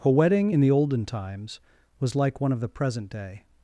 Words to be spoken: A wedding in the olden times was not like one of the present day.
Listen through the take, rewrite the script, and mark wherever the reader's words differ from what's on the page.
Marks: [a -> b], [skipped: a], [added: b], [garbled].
A wedding in the olden times was [skipped: not] like one of the present day.